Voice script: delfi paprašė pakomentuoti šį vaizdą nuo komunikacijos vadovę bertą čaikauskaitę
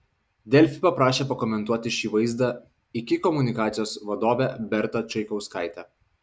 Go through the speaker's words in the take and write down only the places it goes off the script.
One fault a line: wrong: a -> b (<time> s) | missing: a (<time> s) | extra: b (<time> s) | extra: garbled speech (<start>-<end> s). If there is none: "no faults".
wrong: nuo -> iki (3.0 s)